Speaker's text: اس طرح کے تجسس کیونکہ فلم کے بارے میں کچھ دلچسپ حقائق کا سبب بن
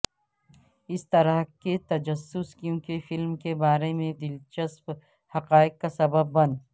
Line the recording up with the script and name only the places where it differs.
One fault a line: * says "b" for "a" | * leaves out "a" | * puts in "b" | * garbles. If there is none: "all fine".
* leaves out "کچھ"